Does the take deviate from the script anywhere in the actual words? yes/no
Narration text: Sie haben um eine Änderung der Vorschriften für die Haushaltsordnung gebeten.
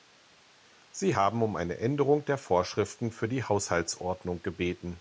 no